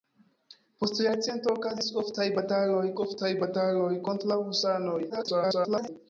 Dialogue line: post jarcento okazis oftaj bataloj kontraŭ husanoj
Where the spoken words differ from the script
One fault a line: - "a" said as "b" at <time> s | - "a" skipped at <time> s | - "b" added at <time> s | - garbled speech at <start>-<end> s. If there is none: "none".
- "oftaj bataloj" added at 3.1 s
- garbled speech at 5.1-5.9 s